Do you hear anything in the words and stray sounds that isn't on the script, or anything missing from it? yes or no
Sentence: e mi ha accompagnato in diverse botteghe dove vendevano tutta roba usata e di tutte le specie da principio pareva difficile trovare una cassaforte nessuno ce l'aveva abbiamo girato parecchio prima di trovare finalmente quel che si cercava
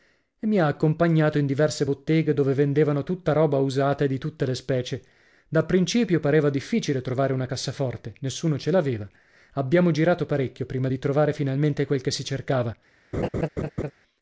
yes